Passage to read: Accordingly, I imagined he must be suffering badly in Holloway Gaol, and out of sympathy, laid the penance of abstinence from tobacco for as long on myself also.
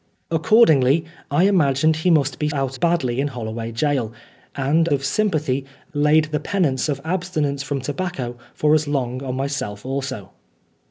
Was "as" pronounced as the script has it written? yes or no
yes